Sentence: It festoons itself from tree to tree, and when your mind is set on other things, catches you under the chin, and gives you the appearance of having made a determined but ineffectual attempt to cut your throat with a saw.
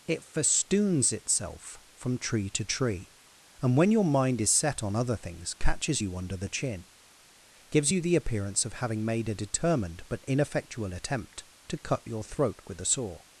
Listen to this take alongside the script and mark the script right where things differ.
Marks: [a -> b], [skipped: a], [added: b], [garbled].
It festoons itself from tree to tree, and when your mind is set on other things, catches you under the chin, [skipped: and] gives you the appearance of having made a determined but ineffectual attempt to cut your throat with a saw.